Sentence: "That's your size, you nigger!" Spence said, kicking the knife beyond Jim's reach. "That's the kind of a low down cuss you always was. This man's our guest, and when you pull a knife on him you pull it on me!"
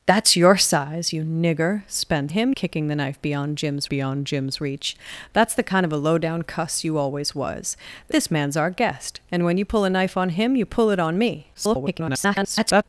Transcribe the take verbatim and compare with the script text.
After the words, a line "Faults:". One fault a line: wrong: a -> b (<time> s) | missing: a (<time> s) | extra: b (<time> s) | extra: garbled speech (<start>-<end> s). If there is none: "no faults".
"That's your size, you nigger!" Spence him, kicking the knife beyond Jim's beyond Jim's reach. "That's the kind of a low down cuss you always was. This man's our guest, and when you pull a knife on him you pull it on me!" [garbled]
Faults:
wrong: said -> him (2.3 s)
extra: beyond Jim's (3.9 s)
extra: garbled speech (11.5-12.8 s)